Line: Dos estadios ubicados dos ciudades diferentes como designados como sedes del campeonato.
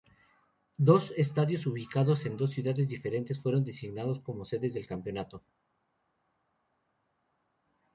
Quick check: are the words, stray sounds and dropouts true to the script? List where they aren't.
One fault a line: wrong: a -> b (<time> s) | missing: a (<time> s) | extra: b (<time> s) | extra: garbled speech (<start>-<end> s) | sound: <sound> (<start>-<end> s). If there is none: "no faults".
extra: en (2.2 s)
wrong: como -> fueron (3.4 s)